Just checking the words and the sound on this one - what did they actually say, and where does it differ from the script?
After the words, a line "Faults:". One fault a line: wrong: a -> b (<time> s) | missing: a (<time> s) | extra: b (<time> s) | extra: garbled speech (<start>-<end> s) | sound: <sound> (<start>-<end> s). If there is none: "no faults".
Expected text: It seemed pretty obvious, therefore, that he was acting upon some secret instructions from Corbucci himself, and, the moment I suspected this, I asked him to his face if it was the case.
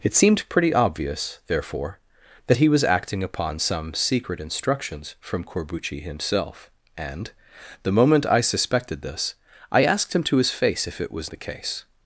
It seemed pretty obvious, therefore, that he was acting upon some secret instructions from Corbucci himself, and, the moment I suspected this, I asked him to his face if it was the case.
Faults:
no faults